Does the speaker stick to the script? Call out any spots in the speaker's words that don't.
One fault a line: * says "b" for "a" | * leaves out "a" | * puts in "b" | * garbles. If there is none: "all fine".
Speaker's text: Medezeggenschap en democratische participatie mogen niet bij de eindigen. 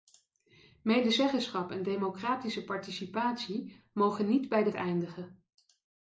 all fine